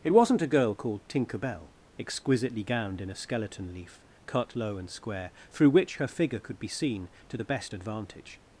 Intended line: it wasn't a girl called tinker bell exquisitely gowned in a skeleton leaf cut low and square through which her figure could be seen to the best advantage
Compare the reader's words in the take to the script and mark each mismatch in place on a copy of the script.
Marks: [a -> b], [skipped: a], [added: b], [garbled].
it wasn't a girl called tinker bell exquisitely gowned in a skeleton leaf cut low and square through which her figure could be seen to the best advantage